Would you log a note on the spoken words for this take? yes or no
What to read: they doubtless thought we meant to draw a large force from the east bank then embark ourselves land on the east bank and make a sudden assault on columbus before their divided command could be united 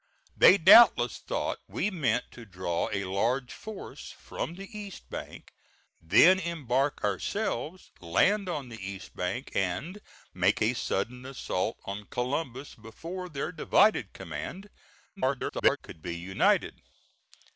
yes